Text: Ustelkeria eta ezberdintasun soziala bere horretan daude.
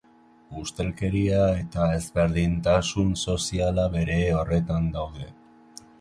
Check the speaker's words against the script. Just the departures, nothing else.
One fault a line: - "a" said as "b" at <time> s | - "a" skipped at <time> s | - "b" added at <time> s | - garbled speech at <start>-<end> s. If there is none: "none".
none